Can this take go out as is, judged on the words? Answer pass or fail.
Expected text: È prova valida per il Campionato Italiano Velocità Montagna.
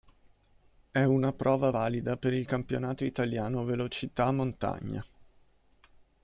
fail